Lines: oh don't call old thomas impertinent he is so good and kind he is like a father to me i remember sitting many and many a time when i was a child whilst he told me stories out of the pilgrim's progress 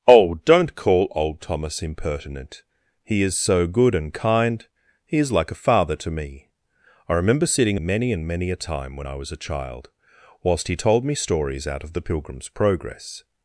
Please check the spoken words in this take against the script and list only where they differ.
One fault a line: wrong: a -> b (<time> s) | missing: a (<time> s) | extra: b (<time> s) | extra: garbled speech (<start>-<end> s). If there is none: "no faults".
no faults